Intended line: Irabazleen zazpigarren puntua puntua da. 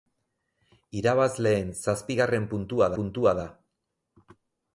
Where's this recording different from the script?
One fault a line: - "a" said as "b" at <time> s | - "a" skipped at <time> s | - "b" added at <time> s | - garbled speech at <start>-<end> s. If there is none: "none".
none